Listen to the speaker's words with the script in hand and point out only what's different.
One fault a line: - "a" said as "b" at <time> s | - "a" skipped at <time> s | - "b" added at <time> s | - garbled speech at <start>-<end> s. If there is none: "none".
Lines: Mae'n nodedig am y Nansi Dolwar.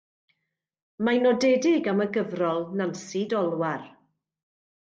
- "gyfrol" added at 2.2 s